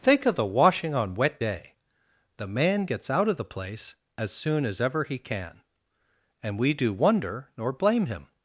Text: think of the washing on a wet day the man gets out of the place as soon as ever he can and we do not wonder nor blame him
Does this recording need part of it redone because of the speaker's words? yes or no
yes